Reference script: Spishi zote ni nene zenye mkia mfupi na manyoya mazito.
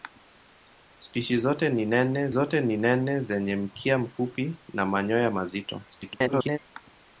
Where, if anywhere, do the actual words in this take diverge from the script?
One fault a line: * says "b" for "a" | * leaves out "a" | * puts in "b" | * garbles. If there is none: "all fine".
* puts in "zote ni nene"
* garbles